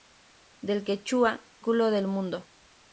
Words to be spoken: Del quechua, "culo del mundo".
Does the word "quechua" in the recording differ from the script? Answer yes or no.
no